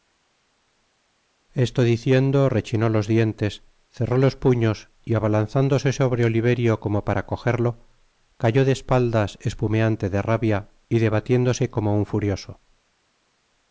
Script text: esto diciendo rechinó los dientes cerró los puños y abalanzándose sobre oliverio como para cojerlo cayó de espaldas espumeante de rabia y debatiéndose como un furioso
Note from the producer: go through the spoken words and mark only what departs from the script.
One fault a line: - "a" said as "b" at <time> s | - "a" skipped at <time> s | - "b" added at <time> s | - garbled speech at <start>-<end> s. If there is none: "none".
none